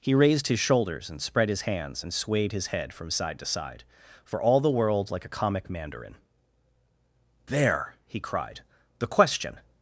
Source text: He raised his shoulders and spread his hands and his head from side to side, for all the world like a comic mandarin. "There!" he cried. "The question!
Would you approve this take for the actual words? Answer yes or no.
no